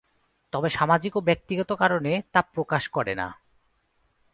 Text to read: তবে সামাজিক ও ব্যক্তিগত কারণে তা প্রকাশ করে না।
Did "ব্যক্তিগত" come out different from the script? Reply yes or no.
no